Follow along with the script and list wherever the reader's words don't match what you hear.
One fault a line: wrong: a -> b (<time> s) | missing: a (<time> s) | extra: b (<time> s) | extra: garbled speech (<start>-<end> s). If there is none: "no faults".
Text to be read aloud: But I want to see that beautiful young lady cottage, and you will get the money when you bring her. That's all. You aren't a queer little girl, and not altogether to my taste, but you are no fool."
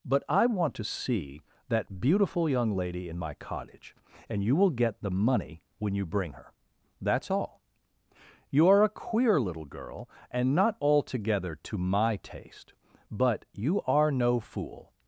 extra: in my (3.1 s)
wrong: aren't -> are (8.7 s)